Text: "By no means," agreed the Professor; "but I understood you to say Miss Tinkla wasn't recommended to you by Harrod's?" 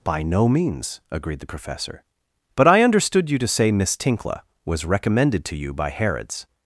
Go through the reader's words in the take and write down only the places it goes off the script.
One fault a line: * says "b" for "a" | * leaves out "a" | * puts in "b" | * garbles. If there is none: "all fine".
* says "was" for "wasn't"